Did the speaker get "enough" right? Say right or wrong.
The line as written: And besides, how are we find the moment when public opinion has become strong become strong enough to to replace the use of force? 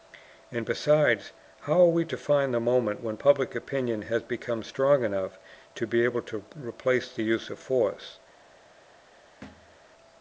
wrong